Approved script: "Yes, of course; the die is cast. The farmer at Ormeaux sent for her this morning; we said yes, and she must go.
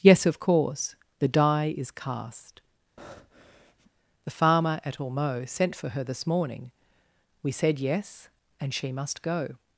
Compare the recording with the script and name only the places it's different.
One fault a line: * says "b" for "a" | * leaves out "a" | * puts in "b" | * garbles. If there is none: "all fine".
all fine